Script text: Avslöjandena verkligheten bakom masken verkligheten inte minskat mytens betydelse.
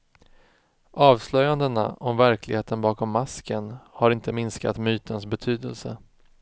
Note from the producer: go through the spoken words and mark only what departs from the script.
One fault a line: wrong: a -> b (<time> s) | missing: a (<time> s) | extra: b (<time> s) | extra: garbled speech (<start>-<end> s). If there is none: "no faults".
extra: om (2.0 s)
wrong: verkligheten -> har (3.8 s)